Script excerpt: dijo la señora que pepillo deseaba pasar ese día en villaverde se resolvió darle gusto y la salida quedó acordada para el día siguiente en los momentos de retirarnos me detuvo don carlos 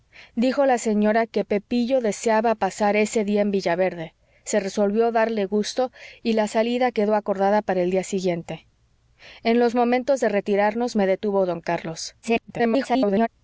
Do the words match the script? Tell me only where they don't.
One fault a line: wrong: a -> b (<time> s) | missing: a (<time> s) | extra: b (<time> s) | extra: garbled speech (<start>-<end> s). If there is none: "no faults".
extra: garbled speech (12.2-13.3 s)